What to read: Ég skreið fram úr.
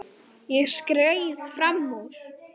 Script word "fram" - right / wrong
right